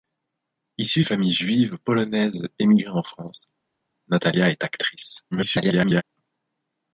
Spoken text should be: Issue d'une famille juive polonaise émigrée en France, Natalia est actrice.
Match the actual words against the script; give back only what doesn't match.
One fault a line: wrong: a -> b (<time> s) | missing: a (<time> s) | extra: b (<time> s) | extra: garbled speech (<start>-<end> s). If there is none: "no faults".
missing: d'une (1.0 s)
extra: garbled speech (5.3-6.0 s)